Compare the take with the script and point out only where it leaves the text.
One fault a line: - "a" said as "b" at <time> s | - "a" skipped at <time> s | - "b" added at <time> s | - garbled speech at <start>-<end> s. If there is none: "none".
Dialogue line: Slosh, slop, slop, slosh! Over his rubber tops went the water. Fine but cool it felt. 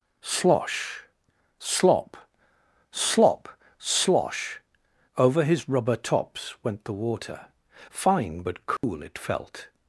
none